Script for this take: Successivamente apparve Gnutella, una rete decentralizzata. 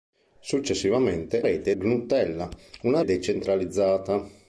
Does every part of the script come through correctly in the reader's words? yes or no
no